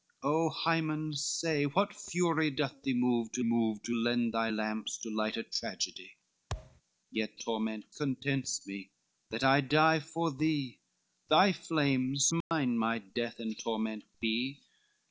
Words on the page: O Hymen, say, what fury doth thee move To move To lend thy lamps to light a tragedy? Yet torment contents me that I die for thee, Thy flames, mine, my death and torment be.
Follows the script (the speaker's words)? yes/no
yes